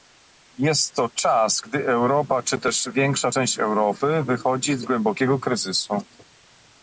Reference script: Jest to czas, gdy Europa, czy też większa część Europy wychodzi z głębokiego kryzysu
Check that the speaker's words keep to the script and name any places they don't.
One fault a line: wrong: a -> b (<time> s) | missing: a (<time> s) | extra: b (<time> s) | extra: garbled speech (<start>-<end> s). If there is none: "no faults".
no faults